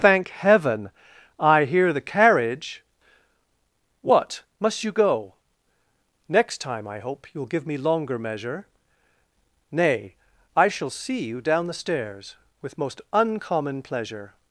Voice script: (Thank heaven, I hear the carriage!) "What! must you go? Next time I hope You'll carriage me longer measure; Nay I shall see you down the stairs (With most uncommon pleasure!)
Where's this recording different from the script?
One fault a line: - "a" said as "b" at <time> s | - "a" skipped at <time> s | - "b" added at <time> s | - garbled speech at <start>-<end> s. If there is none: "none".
- "carriage" said as "give" at 7.5 s